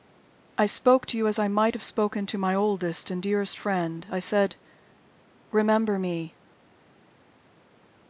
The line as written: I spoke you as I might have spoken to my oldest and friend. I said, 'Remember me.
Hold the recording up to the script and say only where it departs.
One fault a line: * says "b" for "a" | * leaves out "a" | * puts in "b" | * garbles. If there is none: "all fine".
* puts in "to"
* puts in "dearest"